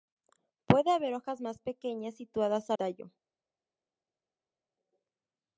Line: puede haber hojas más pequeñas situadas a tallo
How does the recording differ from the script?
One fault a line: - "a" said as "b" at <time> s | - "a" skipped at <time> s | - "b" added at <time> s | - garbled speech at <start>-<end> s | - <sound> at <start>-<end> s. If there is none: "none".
none